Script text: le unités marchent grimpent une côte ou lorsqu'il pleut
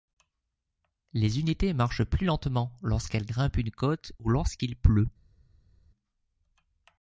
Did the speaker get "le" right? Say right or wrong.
wrong